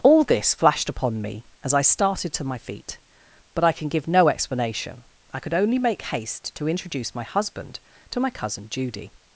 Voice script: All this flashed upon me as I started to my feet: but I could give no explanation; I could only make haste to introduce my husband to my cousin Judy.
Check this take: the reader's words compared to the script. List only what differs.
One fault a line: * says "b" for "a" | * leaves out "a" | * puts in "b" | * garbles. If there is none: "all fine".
* says "can" for "could"